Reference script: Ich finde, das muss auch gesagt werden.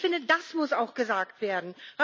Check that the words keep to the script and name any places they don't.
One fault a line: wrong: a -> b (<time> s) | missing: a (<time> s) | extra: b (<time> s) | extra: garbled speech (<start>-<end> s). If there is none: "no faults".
no faults